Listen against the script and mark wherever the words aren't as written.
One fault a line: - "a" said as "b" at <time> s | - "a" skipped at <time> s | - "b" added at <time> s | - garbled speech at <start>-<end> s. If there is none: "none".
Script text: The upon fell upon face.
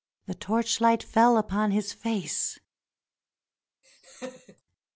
- "upon" said as "torchlight" at 0.3 s
- "his" added at 1.7 s